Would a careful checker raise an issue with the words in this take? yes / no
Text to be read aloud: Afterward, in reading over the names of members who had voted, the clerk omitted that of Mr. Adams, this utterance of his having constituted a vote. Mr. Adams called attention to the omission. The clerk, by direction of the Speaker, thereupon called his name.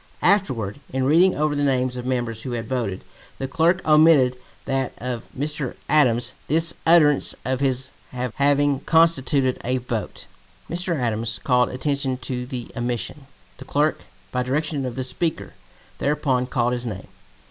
no